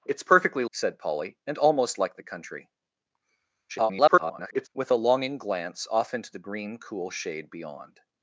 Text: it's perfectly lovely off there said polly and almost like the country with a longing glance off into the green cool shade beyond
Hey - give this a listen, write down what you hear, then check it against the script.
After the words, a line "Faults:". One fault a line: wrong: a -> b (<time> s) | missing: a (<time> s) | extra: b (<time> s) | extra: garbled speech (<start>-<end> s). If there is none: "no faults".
it's perfectly said polly and almost like the country [garbled] with a longing glance off into the green cool shade beyond
Faults:
missing: lovely off there (0.7 s)
extra: garbled speech (3.7-4.7 s)